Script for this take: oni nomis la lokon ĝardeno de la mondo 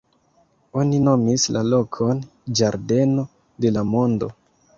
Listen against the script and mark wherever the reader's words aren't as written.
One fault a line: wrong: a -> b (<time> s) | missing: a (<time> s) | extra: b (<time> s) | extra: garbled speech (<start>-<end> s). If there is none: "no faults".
no faults